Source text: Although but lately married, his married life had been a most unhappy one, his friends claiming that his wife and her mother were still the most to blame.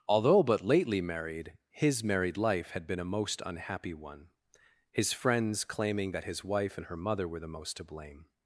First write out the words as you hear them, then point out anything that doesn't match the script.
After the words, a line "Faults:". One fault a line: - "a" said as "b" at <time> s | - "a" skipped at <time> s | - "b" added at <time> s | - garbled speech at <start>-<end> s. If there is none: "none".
Although but lately married, his married life had been a most unhappy one, his friends claiming that his wife and her mother were the most to blame.
Faults:
- "still" skipped at 7.4 s